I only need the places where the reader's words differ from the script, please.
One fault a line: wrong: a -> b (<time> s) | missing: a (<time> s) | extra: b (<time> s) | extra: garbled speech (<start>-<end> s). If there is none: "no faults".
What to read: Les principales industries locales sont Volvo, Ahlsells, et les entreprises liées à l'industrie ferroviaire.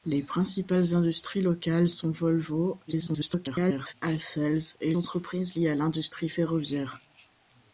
extra: garbled speech (2.9-3.9 s)
missing: les (4.9 s)